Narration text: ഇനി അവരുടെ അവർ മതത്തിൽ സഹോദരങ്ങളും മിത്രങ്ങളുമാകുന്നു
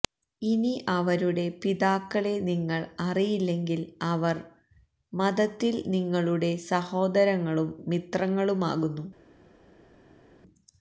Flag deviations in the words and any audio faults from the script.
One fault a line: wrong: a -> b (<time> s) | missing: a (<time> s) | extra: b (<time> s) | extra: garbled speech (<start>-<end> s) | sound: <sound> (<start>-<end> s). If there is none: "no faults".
extra: പിതാക്കളെ നിങ്ങൾ അറിയില്ലെങ്കിൽ (1.6 s)
extra: നിങ്ങളുടെ (5.9 s)